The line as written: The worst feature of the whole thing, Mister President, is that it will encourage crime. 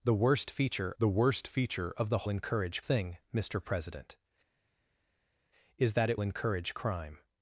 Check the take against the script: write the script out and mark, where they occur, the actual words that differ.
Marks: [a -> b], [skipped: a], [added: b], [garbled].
The worst feature [added: the worst feature] of the [whole -> encourage] thing, Mister President, is that it [skipped: will] encourage crime.